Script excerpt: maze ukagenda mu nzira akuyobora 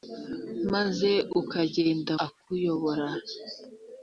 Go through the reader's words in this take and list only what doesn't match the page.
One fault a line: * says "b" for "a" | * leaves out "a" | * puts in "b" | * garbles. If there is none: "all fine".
* leaves out "mu nzira"